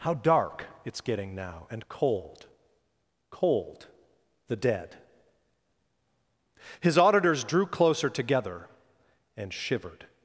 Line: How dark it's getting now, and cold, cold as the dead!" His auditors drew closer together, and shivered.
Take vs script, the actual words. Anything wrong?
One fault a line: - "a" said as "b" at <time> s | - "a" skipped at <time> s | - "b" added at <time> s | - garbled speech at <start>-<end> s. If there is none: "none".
- "as" skipped at 3.9 s